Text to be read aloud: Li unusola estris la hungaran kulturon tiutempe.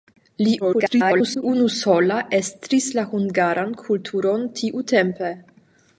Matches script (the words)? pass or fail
fail